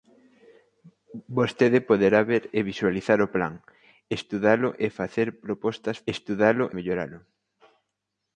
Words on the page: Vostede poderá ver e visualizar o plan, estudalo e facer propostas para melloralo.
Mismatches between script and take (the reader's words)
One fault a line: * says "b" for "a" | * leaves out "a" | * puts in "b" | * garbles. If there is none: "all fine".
* says "estudalo" for "para"